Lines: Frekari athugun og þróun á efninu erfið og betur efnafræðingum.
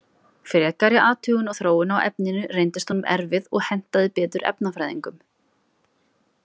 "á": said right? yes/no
yes